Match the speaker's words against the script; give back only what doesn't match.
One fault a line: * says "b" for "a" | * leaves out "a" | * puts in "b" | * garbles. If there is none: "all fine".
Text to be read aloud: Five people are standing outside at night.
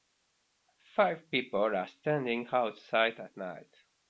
all fine